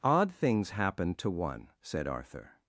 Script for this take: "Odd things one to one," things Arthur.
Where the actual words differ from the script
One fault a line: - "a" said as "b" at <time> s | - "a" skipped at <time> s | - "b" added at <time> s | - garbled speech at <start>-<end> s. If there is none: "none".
- "one" said as "happen" at 0.7 s
- "things" said as "said" at 1.8 s